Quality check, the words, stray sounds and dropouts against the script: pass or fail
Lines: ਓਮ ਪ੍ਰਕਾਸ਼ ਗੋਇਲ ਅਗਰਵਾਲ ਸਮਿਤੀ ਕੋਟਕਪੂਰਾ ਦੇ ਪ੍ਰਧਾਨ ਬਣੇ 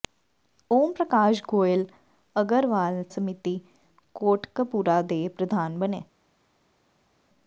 pass